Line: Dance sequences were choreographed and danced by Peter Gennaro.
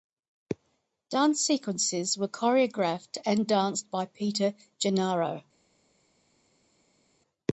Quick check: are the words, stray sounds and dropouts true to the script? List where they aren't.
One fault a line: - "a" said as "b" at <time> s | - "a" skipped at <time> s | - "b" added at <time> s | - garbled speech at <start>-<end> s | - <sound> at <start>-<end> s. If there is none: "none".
none